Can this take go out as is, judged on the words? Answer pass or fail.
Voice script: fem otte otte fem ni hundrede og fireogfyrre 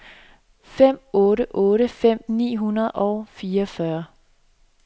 pass